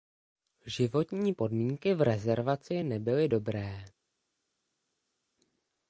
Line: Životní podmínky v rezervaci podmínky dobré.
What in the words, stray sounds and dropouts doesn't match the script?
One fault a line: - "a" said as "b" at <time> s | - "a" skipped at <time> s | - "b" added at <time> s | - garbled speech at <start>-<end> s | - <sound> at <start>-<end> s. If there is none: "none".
- "podmínky" said as "nebyly" at 2.8 s